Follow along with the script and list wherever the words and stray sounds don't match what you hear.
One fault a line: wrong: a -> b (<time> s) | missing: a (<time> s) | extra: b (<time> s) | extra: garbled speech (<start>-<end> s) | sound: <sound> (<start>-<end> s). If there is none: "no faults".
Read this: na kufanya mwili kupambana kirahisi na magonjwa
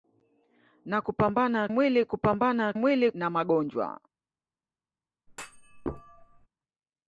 wrong: kufanya -> kupambana (1.0 s)
wrong: kirahisi -> mwili (2.7 s)
sound: thud (5.3-6.5 s)